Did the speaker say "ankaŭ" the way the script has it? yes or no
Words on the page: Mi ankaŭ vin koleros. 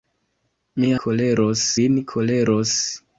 no